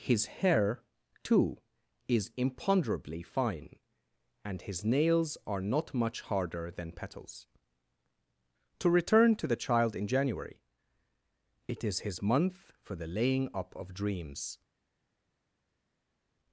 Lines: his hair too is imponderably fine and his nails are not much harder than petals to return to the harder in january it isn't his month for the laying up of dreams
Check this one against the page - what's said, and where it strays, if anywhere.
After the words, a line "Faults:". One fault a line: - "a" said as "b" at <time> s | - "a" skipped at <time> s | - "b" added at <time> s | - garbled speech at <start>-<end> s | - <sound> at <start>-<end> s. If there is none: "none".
his hair too is imponderably fine and his nails are not much harder than petals to return to the child in january it is his month for the laying up of dreams
Faults:
- "harder" said as "child" at 9.6 s
- "isn't" said as "is" at 11.8 s